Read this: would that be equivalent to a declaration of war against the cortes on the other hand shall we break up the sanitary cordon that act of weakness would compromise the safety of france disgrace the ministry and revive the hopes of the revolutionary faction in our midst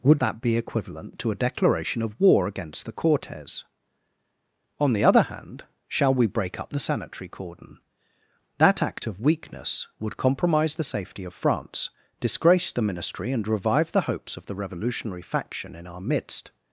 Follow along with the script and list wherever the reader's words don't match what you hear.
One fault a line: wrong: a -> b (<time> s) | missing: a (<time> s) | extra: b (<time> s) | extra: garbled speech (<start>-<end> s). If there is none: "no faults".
no faults